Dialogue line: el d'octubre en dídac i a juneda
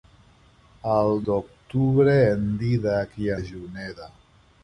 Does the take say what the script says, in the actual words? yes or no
yes